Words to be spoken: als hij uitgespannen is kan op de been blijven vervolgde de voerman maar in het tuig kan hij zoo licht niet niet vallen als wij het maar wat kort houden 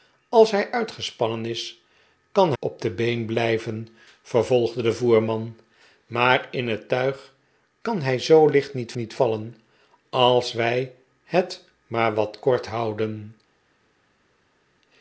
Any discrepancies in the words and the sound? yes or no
no